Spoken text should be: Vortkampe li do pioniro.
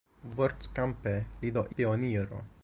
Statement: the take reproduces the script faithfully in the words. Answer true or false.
true